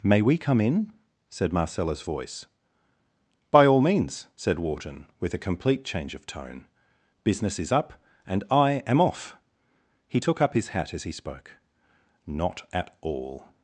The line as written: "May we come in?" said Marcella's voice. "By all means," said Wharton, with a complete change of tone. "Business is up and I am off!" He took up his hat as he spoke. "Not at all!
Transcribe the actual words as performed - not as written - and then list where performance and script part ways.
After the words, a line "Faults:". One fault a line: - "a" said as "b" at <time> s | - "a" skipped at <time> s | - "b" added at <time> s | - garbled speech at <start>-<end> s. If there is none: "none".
"May we come in?" said Marcella's voice. "By all means," said Wharton, with a complete change of tone. "Business is up and I am off!" He took up his hat as he spoke. "Not at all!
Faults:
none